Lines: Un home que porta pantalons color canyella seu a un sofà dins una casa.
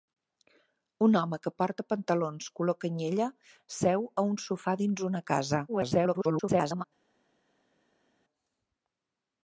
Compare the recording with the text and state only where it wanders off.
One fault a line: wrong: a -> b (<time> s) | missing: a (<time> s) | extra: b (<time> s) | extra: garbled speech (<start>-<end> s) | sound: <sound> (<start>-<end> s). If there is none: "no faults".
extra: garbled speech (5.7-6.8 s)